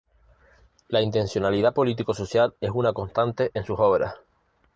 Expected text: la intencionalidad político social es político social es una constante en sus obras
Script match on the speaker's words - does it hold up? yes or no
no